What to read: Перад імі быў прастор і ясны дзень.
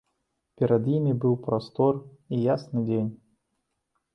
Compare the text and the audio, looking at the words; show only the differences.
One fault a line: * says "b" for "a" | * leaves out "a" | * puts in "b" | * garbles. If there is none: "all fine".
all fine